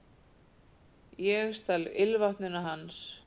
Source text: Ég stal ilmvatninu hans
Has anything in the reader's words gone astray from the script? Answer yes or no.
no